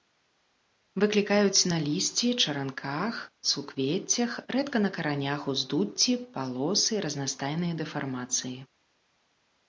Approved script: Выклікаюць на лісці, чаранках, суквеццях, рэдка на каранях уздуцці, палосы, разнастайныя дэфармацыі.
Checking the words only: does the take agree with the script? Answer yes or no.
yes